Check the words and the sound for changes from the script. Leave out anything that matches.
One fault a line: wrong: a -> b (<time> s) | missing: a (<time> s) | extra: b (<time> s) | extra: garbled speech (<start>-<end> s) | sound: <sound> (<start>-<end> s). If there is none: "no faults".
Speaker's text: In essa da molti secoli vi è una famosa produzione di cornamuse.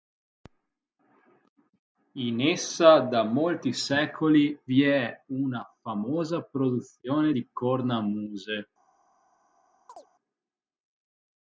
sound: chirp (9.9-10.1 s)